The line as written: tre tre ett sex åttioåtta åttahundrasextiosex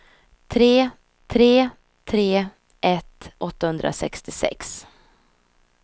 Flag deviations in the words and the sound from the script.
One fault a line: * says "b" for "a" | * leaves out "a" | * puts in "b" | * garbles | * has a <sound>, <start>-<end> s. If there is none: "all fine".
* puts in "tre"
* leaves out "sex åttioåtta"